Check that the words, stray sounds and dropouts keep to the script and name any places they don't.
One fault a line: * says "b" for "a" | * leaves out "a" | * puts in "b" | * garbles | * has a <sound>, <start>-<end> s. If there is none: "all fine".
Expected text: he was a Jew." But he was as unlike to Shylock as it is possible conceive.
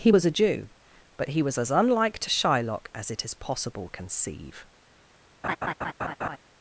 * has a laugh, 5.4-6.4 s